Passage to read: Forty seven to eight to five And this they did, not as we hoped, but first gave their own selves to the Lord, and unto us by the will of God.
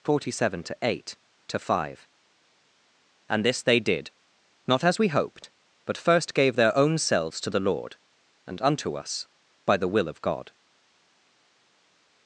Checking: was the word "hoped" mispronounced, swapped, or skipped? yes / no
no